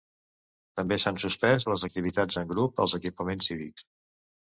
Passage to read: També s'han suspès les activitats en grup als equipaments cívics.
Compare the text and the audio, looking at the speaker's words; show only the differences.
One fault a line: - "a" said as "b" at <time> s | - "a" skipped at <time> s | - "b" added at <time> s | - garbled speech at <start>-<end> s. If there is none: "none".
none